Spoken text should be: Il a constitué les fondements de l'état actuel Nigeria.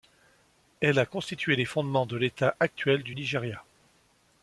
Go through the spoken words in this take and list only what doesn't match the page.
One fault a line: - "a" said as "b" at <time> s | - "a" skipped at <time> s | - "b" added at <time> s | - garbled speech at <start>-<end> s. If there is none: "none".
- "Il" said as "Elle" at 0.8 s
- "du" added at 3.0 s